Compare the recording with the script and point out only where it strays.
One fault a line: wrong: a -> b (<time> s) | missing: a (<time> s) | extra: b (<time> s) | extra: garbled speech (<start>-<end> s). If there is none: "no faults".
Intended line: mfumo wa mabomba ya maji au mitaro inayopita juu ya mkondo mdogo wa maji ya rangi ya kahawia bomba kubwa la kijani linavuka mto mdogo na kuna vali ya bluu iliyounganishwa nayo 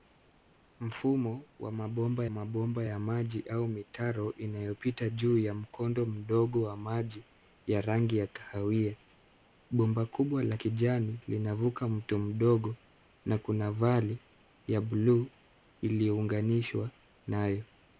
extra: mabomba (2.3 s)